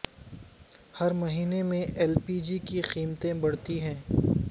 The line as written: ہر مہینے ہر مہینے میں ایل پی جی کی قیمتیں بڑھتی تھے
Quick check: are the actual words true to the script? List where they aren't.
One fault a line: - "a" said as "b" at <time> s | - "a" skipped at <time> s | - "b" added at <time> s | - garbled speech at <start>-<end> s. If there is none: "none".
- "ہر مہینے" skipped at 1.6 s
- "تھے" said as "ہیں" at 3.8 s